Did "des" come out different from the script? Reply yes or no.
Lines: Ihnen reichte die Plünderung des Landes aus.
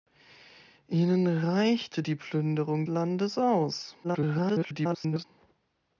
yes